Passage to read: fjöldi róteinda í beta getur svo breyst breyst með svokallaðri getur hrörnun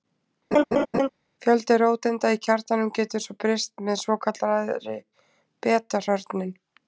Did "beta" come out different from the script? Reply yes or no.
yes